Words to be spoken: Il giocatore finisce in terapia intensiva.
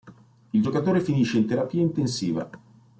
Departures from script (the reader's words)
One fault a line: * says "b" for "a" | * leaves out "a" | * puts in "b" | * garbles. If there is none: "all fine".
all fine